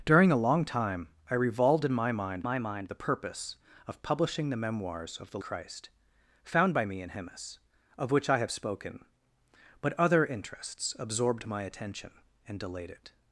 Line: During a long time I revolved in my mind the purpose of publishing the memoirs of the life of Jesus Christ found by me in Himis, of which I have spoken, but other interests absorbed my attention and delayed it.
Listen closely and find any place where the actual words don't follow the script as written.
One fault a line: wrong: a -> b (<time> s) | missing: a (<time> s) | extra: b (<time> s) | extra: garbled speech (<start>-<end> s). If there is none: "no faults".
extra: my mind (2.4 s)
missing: life of Jesus (5.4 s)